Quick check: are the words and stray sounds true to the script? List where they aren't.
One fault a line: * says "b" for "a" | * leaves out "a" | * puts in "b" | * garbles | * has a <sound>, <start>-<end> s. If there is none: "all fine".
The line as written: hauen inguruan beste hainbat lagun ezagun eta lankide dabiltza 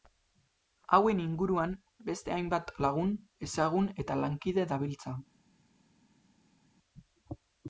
all fine